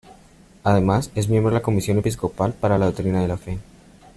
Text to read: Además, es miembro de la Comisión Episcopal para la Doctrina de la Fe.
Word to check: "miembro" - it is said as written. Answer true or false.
true